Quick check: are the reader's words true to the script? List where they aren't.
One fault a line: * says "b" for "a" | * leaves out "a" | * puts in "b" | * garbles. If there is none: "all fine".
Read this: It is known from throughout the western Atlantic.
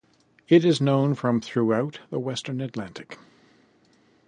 all fine